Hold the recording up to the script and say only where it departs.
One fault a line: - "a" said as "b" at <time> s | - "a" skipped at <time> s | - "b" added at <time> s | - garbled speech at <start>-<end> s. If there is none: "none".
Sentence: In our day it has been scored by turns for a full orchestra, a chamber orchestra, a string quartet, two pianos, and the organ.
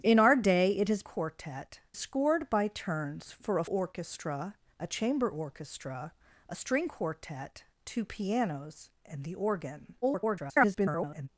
- "been" said as "quartet" at 1.0 s
- "full" skipped at 3.6 s
- garbled speech at 10.0-11.3 s